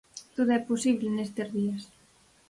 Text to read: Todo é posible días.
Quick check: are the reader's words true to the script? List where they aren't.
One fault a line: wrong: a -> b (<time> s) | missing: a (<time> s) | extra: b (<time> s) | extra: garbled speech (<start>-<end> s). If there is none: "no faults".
extra: nestes (1.2 s)